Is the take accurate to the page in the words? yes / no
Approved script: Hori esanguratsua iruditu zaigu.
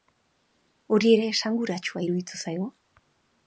no